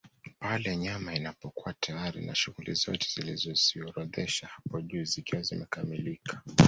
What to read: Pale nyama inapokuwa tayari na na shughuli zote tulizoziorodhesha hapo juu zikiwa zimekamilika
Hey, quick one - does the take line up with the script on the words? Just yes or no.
no